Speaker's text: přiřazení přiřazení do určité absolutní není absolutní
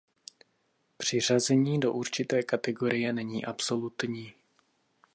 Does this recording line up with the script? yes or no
no